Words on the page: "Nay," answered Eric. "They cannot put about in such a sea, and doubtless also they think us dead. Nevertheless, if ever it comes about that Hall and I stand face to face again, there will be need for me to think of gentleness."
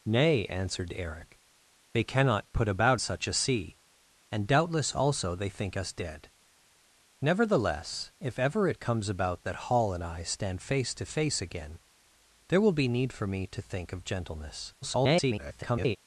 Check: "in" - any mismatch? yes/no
yes